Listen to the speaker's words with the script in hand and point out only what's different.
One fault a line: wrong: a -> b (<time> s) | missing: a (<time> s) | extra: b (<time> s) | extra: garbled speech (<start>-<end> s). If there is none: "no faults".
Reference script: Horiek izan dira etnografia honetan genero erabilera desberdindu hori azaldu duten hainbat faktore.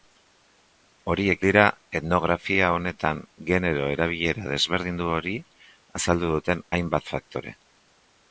missing: izan (1.4 s)